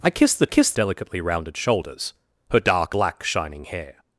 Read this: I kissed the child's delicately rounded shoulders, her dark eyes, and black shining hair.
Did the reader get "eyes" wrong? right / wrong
wrong